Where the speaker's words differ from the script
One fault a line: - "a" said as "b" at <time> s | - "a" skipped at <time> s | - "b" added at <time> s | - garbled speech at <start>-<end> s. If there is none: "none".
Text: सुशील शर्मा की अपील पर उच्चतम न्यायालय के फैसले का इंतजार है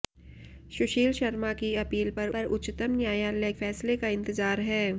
- "पर" added at 2.3 s
- "के" skipped at 3.5 s